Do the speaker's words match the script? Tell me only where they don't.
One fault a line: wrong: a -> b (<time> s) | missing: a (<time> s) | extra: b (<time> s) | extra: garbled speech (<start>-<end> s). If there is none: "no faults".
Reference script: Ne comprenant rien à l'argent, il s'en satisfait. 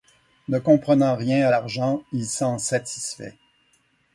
no faults